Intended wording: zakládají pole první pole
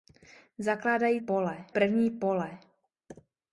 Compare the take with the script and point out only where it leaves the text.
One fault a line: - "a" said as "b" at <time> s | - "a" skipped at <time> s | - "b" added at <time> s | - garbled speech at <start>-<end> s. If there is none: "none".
none